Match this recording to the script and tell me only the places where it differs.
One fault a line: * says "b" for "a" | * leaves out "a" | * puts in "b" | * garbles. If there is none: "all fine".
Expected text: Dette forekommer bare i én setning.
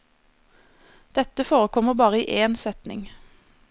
all fine